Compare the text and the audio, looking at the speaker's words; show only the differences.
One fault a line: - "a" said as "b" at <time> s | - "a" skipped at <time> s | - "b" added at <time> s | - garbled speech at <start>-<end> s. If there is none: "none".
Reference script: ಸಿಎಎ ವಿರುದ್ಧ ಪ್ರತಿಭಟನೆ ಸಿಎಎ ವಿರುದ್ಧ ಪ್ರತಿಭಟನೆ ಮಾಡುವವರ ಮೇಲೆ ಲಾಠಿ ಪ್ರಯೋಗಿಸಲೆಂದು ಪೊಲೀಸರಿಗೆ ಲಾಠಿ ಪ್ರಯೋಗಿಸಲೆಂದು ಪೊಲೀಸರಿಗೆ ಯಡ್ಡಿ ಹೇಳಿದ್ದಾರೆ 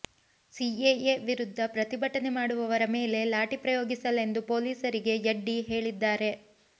- "ಸಿಎಎ ವಿರುದ್ಧ ಪ್ರತಿಭಟನೆ" skipped at 2.3 s
- "ಲಾಠಿ ಪ್ರಯೋಗಿಸಲೆಂದು ಪೊಲೀಸರಿಗೆ" skipped at 5.2 s